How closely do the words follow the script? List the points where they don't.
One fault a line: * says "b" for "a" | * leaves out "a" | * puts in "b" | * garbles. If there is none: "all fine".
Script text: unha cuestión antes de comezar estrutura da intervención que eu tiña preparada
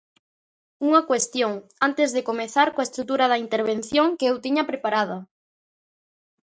* puts in "coa"